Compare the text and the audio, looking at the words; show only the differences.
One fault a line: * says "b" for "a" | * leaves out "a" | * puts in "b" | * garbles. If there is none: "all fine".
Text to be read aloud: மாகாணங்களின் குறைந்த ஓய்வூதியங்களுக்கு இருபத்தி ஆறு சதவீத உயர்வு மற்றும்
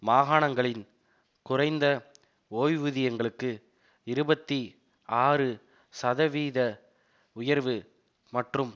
all fine